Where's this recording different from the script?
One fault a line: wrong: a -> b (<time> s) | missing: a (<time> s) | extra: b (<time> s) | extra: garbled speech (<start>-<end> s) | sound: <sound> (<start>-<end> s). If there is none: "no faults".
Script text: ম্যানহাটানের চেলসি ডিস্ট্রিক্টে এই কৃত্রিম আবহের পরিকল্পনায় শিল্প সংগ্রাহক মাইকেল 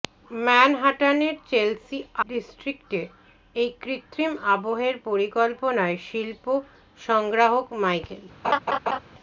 sound: laugh (8.4-9.0 s)